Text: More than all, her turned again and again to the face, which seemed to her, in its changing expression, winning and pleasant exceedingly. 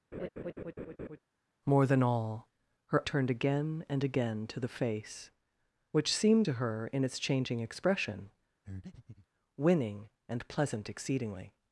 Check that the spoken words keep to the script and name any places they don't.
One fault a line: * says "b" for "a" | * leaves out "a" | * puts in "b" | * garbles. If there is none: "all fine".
all fine